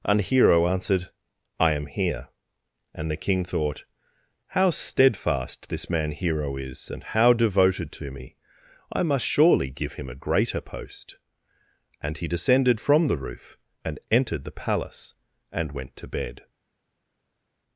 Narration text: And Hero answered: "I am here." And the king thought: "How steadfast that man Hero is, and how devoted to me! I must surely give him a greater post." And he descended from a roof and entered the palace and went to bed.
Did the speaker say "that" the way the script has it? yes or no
no